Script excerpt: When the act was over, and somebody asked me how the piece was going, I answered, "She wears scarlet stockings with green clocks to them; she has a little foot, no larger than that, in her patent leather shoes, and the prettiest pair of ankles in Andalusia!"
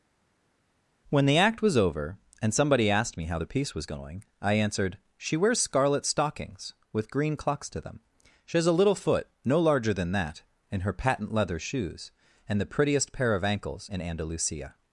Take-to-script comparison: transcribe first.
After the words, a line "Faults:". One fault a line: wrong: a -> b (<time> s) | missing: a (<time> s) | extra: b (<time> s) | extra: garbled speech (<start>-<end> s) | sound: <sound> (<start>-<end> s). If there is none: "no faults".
When the act was over, and somebody asked me how the piece was going, I answered, "She wears scarlet stockings with green clocks to them; she has a little foot, no larger than that, in her patent leather shoes, and the prettiest pair of ankles in Andalusia!"
Faults:
no faults